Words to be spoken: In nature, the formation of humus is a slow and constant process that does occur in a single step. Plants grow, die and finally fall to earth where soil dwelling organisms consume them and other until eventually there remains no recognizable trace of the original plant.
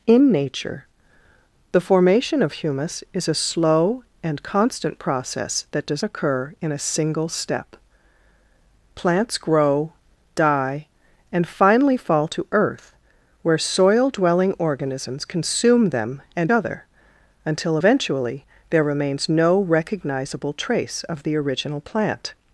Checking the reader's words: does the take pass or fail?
pass